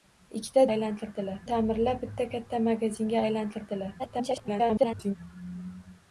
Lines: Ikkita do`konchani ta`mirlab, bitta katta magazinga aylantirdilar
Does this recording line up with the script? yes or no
no